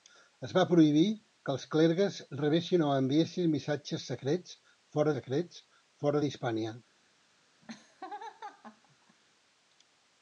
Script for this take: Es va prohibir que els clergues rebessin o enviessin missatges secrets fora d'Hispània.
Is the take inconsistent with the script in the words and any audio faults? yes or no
yes